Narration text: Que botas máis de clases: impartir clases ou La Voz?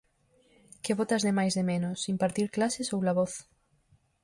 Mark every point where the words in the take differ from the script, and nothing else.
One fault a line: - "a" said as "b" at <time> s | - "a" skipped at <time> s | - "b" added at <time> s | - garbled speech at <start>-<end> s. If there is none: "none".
- "de" added at 1.2 s
- "clases" said as "menos" at 1.7 s